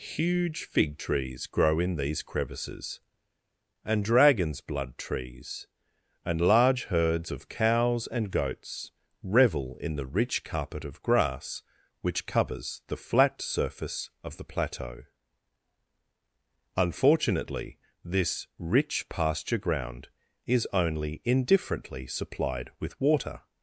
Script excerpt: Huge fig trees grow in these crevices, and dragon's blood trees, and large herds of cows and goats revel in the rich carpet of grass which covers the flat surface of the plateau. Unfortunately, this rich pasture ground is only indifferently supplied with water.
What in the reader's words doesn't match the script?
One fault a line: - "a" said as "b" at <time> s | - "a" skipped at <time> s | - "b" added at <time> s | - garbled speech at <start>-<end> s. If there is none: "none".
none